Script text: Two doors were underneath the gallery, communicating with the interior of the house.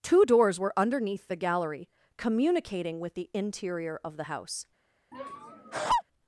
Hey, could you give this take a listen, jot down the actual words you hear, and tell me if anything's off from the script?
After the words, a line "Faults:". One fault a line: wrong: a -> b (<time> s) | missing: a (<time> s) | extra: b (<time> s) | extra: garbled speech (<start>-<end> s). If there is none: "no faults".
Two doors were underneath the gallery, communicating with the interior of the house.
Faults:
no faults